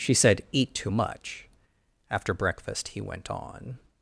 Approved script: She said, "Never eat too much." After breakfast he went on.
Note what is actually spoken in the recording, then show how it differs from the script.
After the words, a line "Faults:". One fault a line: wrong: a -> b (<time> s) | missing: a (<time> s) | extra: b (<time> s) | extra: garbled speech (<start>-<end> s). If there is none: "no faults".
She said, "eat too much." After breakfast he went on.
Faults:
missing: Never (0.4 s)